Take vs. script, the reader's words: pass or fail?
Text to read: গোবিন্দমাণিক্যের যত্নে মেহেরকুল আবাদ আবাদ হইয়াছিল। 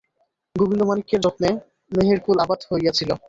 fail